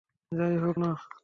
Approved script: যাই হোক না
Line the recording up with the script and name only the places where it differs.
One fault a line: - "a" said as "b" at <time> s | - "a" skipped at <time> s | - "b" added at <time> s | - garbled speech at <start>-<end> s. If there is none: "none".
none